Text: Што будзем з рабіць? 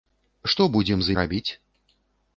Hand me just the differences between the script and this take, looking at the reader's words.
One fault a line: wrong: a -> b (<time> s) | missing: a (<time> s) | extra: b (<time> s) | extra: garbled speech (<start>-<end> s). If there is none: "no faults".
no faults